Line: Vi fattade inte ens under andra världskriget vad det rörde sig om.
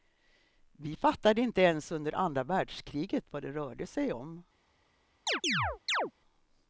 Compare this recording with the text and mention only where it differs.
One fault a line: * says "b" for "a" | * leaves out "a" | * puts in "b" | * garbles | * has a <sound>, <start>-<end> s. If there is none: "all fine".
* has a chirp, 5.3-6.1 s